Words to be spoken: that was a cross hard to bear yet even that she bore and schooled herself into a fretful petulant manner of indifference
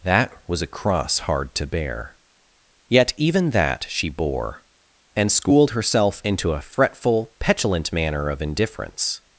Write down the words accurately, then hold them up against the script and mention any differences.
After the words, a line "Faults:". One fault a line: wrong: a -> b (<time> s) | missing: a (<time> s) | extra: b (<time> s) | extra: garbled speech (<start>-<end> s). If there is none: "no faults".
that was a cross hard to bear yet even that she bore and schooled herself into a fretful petulant manner of indifference
Faults:
no faults